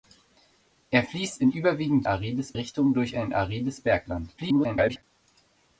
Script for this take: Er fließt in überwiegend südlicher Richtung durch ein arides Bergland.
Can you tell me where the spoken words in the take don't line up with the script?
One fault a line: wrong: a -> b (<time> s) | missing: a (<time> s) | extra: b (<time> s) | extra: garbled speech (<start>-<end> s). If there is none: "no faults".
wrong: südlicher -> arides (2.0 s)
extra: garbled speech (4.4-5.0 s)